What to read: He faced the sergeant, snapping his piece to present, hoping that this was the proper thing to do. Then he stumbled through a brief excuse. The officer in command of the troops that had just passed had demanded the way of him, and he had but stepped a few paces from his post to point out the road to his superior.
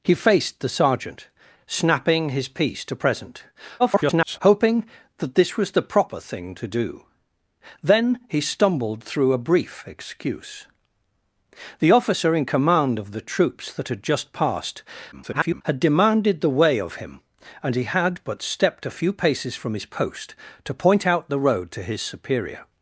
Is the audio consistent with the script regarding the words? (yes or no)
no